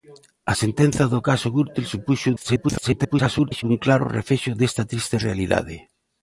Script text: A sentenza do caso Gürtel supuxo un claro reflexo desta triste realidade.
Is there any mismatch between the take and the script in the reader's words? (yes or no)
yes